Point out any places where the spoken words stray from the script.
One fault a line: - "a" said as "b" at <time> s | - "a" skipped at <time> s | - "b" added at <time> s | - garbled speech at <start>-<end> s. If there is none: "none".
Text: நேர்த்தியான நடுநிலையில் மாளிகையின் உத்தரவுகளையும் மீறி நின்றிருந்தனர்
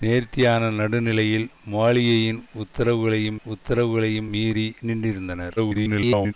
- "உத்தரவுகளையும்" added at 3.5 s
- garbled speech at 5.6-6.3 s